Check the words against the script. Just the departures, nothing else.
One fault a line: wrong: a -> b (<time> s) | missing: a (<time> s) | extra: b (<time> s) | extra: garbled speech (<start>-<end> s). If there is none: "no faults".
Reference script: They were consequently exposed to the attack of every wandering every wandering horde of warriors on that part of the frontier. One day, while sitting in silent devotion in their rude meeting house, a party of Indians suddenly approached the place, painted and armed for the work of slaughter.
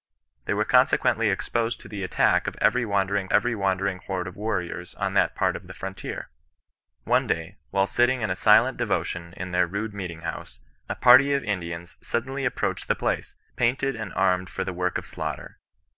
no faults